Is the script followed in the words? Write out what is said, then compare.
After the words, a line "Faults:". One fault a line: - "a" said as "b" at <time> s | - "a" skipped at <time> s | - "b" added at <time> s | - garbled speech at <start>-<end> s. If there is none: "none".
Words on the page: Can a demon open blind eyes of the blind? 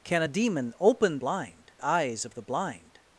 Can a demon open blind eyes of the blind?
Faults:
none